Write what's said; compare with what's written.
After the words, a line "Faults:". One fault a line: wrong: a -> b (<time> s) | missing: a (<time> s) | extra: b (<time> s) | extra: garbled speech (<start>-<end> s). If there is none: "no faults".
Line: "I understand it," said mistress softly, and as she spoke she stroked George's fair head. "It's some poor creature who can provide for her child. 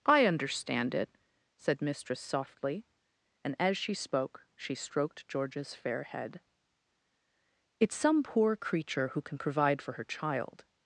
"I understand it," said mistress softly, and as she spoke she stroked George's fair head. "It's some poor creature who can provide for her child.
Faults:
no faults